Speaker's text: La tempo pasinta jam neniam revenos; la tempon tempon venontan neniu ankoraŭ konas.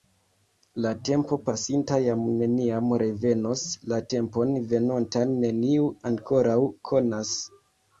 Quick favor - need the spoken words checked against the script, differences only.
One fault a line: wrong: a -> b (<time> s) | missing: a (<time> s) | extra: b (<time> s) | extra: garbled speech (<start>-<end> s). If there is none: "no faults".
missing: tempon (4.6 s)